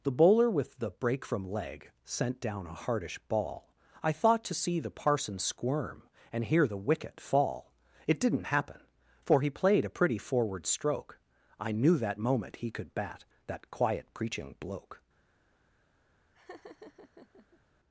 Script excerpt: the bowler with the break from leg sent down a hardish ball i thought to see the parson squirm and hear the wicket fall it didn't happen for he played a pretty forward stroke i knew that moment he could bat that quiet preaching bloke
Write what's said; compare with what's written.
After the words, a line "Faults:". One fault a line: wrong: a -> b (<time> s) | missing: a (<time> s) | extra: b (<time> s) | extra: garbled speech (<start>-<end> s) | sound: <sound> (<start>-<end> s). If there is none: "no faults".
the bowler with the break from leg sent down a hardish ball i thought to see the parson squirm and hear the wicket fall it didn't happen for he played a pretty forward stroke i knew that moment he could bat that quiet preaching bloke
Faults:
sound: laugh (16.3-17.6 s)